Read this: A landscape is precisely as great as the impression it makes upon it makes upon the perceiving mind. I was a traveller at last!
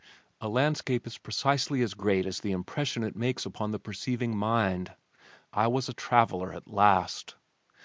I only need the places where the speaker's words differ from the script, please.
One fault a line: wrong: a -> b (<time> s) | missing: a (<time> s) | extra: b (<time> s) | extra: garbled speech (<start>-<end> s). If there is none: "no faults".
missing: it makes upon (3.7 s)